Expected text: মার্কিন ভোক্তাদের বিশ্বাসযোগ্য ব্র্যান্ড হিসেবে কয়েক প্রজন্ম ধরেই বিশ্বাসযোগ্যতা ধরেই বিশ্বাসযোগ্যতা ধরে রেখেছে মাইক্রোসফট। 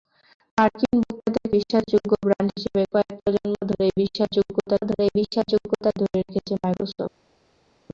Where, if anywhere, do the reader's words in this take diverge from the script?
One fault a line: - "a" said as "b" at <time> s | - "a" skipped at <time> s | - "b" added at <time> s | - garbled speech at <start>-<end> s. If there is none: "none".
none